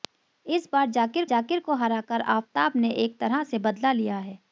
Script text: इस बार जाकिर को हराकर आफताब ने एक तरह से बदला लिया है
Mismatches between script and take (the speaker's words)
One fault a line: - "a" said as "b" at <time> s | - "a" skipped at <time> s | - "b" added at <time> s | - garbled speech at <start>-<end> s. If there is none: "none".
- "जाकिर" added at 1.2 s